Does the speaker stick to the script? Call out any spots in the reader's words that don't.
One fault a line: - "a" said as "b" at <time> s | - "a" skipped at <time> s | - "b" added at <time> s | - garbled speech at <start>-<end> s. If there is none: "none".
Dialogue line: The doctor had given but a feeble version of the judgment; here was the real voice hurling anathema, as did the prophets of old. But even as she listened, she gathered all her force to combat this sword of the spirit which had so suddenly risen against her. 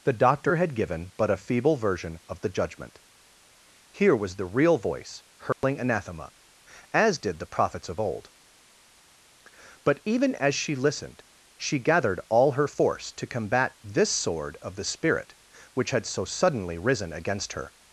none